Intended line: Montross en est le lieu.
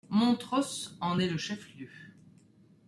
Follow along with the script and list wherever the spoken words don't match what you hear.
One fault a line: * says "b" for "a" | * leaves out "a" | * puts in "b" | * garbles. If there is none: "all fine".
* puts in "chef"